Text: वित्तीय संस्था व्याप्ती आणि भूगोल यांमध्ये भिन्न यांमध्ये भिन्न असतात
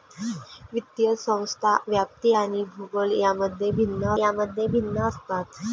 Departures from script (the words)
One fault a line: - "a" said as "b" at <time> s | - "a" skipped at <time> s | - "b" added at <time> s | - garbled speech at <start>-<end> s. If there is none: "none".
none